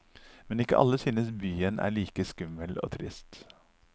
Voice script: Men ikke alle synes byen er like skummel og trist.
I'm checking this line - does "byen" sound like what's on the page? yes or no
yes